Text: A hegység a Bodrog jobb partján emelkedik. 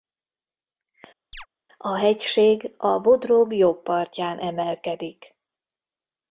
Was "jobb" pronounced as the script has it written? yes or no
yes